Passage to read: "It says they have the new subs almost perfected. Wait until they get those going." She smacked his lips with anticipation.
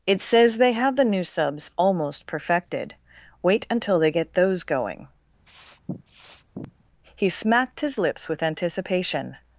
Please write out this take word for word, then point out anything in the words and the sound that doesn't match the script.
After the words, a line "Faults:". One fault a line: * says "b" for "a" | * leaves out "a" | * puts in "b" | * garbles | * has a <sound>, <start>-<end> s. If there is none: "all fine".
"It says they have the new subs almost perfected. Wait until they get those going." He smacked his lips with anticipation.
Faults:
* has a sniff, 5.4-6.8 s
* says "He" for "She"